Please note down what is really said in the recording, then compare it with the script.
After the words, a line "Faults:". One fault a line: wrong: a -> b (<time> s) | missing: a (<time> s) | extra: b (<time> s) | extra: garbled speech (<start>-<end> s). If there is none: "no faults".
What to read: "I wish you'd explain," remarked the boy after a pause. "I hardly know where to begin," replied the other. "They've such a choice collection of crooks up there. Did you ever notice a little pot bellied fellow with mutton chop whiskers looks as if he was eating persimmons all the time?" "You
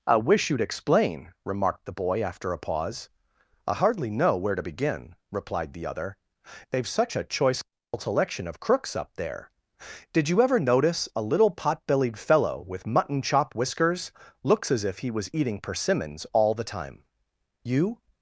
"I wish you'd explain," remarked the boy after a pause. "I hardly know where to begin," replied the other. "They've such a choice collection of crooks up there. Did you ever notice a little pot bellied fellow with mutton chop whiskers looks as if he was eating persimmons all the time?" "You
Faults:
no faults